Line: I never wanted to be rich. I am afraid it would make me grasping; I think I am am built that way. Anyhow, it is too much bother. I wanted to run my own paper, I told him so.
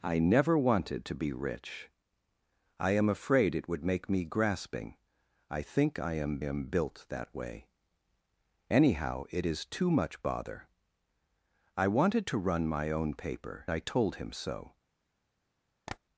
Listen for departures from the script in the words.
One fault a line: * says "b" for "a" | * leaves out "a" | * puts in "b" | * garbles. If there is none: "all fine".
all fine